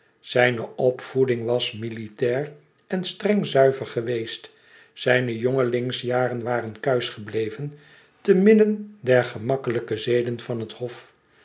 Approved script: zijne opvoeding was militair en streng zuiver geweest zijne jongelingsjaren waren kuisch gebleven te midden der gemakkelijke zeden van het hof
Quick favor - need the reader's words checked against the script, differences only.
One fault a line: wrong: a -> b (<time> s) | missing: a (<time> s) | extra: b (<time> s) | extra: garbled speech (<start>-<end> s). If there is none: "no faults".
no faults